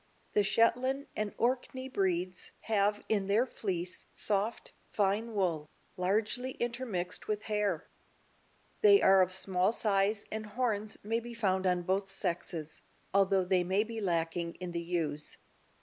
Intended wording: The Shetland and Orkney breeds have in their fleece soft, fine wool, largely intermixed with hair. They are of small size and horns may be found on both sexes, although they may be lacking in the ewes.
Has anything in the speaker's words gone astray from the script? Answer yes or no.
no